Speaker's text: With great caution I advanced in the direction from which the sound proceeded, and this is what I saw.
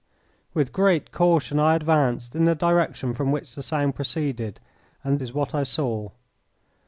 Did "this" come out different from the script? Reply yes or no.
yes